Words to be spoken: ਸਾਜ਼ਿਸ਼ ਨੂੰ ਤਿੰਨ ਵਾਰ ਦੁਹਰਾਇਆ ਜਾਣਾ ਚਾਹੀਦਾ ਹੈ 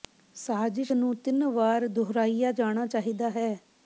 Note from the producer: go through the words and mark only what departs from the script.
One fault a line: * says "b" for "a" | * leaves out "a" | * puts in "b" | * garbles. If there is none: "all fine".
all fine